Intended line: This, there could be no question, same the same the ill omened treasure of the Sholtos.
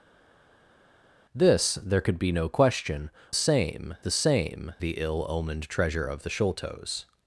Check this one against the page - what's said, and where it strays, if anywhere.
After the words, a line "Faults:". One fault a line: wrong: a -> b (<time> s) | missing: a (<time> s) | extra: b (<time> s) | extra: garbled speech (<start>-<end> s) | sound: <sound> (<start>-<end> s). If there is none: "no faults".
This, there could be no question, same the same the ill omened treasure of the Sholtos.
Faults:
no faults